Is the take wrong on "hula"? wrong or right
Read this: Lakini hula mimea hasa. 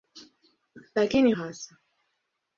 wrong